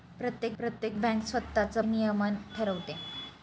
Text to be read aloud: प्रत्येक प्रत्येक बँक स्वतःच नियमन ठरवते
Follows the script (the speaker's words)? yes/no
yes